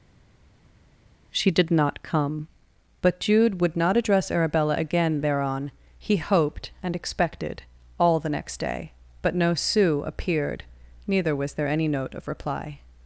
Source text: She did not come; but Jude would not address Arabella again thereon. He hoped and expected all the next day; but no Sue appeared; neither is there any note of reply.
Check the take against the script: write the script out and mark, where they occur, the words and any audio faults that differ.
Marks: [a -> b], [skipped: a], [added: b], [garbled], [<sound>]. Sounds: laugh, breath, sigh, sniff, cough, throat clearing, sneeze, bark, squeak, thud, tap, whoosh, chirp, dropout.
She did not come; but Jude would not address Arabella again thereon. He hoped and expected all the next day; but no Sue appeared; neither [is -> was] there any note of reply.